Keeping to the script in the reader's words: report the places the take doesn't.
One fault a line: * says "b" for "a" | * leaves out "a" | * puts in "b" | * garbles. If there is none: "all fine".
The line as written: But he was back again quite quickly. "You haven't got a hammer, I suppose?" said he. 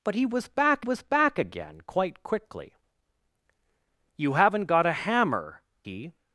* puts in "was back"
* leaves out "I suppose said"